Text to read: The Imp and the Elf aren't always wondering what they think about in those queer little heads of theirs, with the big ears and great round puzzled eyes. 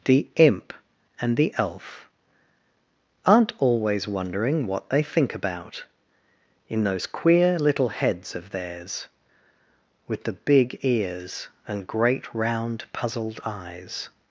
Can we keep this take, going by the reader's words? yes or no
yes